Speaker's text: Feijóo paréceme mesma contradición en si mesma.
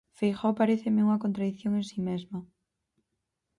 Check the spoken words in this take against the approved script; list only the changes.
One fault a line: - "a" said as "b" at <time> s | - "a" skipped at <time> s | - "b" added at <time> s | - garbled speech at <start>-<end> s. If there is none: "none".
- "mesma" said as "unha" at 1.1 s